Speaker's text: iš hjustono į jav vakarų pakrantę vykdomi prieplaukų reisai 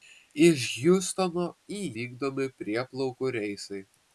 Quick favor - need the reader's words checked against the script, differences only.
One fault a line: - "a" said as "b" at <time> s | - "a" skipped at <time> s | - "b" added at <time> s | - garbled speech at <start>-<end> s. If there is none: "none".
- "jav vakarų pakrantę" skipped at 1.8 s